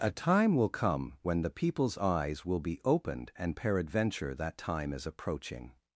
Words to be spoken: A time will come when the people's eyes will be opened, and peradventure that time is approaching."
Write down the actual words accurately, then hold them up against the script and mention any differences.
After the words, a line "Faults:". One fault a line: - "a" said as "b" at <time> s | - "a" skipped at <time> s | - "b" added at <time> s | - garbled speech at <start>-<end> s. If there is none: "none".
A time will come when the people's eyes will be opened, and peradventure that time is approaching."
Faults:
none